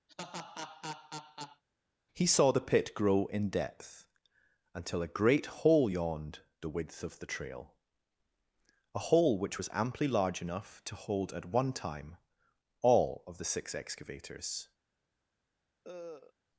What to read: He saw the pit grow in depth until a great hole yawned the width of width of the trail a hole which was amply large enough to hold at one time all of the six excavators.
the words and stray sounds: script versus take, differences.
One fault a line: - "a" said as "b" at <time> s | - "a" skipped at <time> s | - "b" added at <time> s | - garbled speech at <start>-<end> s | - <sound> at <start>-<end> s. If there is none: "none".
- laugh at 0.1-1.6 s
- "width of" skipped at 7.2 s
- cough at 15.8-16.3 s